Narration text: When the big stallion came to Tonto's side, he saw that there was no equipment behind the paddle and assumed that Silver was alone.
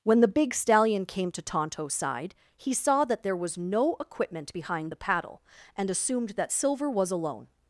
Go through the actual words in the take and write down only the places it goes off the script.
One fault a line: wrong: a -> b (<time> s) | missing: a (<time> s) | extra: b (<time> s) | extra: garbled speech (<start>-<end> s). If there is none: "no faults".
no faults